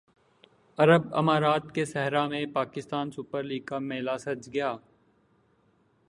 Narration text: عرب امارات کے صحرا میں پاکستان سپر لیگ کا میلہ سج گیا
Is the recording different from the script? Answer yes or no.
no